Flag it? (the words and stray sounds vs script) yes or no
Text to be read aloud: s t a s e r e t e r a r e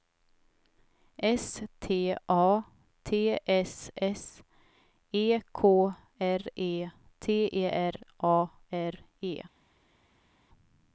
yes